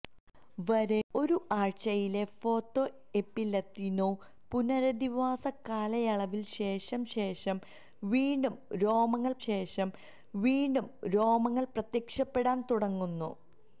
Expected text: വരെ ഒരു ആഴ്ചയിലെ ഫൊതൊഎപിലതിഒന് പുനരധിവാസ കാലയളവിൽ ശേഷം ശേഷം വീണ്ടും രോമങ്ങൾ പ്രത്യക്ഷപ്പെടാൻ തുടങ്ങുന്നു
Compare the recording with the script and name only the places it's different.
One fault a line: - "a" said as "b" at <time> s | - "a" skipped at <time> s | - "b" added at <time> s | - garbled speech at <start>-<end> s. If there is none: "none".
- "ശേഷം വീണ്ടും രോമങ്ങൾ" added at 9.5 s